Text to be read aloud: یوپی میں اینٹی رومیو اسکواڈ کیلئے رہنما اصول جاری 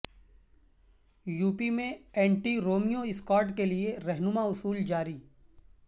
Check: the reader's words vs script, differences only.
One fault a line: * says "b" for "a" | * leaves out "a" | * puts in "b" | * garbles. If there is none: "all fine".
all fine